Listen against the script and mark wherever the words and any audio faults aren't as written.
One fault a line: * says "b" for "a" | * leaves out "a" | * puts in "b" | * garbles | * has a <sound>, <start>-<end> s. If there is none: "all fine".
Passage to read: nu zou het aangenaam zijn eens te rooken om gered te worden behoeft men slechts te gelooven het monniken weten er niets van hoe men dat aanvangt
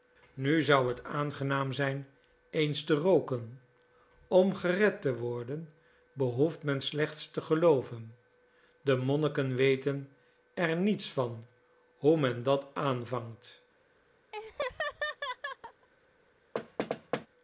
* says "de" for "het"
* has a laugh, 14.3-15.9 s
* has a thud, 16.5-17.3 s